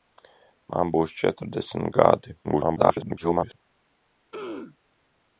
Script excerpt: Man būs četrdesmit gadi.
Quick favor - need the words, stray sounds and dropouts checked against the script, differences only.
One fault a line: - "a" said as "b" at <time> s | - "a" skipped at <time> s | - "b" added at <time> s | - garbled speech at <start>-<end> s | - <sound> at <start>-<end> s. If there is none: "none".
- garbled speech at 2.4-3.6 s
- throat clearing at 4.3-4.8 s